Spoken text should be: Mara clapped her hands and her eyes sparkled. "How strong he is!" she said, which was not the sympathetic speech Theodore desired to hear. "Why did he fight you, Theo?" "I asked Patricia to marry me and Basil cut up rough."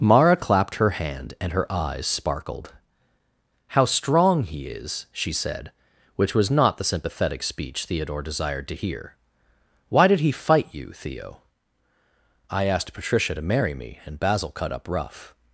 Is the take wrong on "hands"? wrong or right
wrong